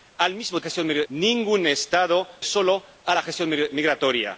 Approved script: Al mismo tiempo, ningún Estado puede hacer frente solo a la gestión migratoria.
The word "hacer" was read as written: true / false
false